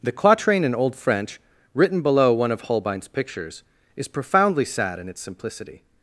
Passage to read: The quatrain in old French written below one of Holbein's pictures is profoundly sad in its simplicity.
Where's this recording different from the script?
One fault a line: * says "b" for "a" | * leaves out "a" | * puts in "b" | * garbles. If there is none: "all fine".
all fine